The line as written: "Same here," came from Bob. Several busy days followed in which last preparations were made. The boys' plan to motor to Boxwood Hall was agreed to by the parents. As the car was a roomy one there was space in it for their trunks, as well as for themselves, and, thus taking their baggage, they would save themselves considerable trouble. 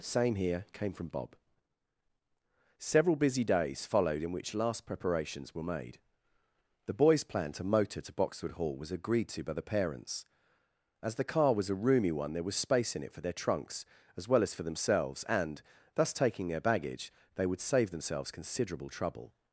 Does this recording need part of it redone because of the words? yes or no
no